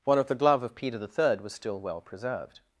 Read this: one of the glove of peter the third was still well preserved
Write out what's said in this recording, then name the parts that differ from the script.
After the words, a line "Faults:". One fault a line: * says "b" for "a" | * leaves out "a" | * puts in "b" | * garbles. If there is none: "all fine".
one of the glove of peter the third was still well preserved
Faults:
all fine